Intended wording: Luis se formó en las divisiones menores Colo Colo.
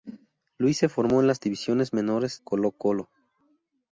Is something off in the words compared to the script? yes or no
no